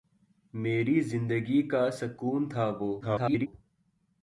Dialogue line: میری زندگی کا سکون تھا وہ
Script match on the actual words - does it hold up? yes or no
no